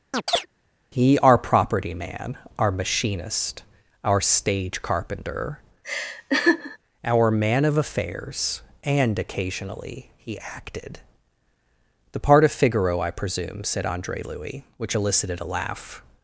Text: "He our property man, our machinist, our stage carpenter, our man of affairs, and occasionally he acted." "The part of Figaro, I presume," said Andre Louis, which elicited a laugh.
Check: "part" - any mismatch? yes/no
no